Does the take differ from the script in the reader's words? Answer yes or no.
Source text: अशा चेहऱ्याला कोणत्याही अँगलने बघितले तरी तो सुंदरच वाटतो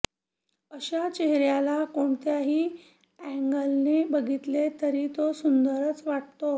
no